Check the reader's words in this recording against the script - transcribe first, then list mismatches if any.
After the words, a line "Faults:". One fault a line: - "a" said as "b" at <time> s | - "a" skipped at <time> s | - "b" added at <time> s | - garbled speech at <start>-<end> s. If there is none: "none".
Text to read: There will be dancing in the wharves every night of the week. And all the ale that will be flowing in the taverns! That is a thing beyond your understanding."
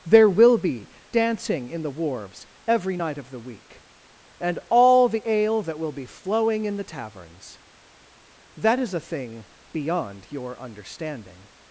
There will be dancing in the wharves every night of the week. And all the ale that will be flowing in the taverns! That is a thing beyond your understanding."
Faults:
none